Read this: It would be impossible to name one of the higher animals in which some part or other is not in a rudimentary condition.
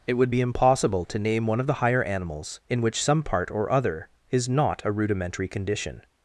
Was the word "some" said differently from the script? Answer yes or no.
no